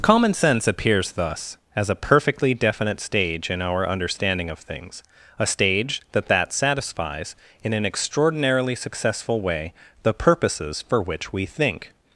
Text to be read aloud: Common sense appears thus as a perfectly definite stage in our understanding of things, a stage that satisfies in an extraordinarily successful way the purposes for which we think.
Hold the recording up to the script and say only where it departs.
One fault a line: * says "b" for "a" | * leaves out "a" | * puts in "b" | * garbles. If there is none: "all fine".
* puts in "that"